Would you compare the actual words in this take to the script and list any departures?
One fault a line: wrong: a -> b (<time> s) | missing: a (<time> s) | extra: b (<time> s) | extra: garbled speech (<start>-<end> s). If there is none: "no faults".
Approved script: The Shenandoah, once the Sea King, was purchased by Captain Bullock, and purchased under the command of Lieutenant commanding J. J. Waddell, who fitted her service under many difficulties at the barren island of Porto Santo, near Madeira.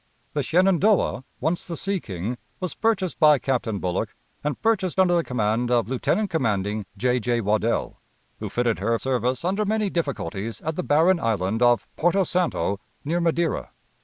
no faults